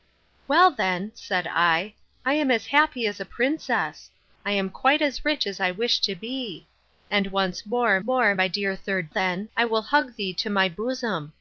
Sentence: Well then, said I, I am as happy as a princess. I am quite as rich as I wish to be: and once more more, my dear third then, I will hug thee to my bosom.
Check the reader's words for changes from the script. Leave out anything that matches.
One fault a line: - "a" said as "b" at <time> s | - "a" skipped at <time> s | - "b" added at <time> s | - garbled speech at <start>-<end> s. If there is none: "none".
none